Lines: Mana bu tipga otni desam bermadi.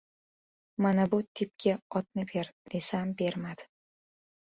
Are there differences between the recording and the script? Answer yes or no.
yes